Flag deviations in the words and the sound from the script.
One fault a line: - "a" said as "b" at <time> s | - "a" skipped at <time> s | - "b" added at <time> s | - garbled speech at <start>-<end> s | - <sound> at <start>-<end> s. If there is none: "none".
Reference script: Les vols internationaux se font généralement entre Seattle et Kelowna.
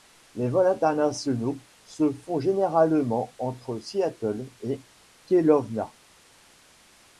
none